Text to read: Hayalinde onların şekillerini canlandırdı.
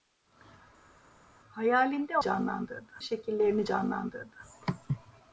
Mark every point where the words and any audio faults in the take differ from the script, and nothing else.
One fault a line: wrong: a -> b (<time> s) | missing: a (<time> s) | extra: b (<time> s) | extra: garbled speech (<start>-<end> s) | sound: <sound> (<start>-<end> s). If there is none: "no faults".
wrong: onların -> canlandırdı (2.2 s)